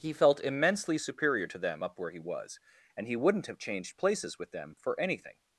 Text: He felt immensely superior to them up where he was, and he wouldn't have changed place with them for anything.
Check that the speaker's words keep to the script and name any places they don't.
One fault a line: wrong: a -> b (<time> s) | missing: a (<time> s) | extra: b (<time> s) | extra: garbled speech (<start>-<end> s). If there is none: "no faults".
wrong: place -> places (4.0 s)